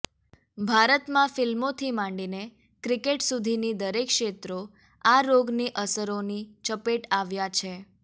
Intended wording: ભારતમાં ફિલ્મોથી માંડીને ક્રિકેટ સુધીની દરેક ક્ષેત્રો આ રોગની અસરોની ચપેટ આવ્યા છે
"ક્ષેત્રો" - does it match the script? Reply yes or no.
yes